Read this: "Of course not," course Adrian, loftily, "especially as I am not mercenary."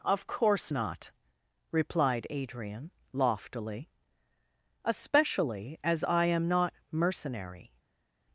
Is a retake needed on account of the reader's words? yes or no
yes